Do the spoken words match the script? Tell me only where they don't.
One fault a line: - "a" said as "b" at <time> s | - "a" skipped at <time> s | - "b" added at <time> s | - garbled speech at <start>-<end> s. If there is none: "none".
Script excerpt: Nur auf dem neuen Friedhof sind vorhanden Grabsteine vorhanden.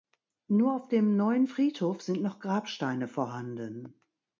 - "vorhanden" said as "noch" at 2.2 s